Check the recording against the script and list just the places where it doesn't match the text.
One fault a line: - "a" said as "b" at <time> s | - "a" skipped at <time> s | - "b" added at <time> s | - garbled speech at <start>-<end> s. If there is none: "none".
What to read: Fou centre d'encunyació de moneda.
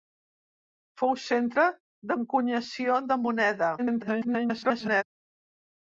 - garbled speech at 3.8-5.0 s